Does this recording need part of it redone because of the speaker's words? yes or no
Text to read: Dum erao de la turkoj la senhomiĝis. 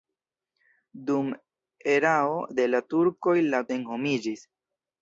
no